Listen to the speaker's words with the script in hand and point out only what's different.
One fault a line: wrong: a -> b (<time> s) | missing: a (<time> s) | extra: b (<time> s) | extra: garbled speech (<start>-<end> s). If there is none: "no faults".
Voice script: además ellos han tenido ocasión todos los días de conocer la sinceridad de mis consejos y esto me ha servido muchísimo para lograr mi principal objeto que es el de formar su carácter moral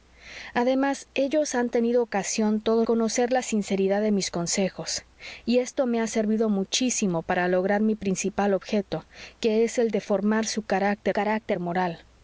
missing: los días de (2.9 s)
extra: carácter (11.1 s)